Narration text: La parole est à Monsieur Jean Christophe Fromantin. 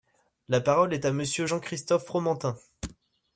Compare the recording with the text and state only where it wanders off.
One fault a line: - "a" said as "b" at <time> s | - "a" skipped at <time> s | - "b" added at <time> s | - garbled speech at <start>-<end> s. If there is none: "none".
none